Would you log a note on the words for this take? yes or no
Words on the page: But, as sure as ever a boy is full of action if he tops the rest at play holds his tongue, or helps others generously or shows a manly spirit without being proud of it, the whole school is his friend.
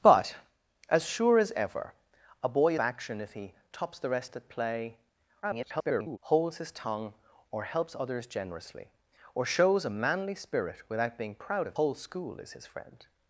yes